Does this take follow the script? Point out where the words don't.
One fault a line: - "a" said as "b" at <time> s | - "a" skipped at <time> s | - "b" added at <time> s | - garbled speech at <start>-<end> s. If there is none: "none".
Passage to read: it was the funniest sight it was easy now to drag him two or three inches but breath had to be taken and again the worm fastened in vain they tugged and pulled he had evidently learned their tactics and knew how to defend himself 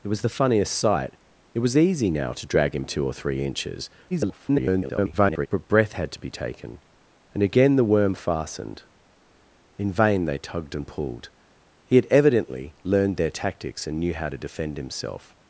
- garbled speech at 4.1-5.5 s